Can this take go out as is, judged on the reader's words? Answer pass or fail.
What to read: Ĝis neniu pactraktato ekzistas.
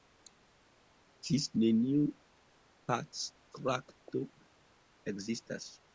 pass